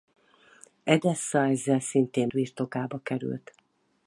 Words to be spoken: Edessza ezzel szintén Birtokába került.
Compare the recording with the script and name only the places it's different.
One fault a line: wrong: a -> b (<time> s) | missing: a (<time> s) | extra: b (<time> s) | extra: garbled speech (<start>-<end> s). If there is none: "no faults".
no faults